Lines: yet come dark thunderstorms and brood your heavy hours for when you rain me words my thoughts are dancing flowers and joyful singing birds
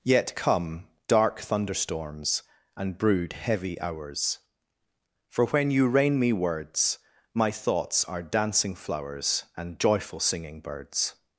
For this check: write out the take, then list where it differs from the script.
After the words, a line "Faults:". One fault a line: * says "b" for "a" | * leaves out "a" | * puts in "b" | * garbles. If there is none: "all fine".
yet come dark thunderstorms and brood heavy hours for when you rain me words my thoughts are dancing flowers and joyful singing birds
Faults:
* leaves out "your"